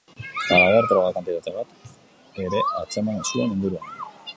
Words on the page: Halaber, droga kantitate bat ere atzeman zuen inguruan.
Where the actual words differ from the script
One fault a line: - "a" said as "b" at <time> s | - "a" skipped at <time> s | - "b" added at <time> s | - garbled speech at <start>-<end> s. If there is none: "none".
none